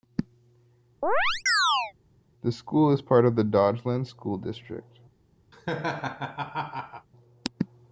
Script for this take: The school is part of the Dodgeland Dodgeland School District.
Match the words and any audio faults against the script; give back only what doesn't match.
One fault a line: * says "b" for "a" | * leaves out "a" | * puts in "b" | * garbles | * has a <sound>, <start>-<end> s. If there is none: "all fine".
* has a chirp, 1.0-1.9 s
* leaves out "Dodgeland"
* has a laugh, 5.5-7.1 s